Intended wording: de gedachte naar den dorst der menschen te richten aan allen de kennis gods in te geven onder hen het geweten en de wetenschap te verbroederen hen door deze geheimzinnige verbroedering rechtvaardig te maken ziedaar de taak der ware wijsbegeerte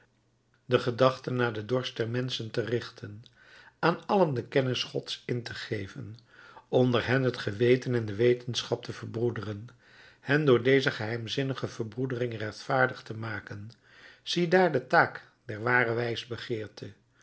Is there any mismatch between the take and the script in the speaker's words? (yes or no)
no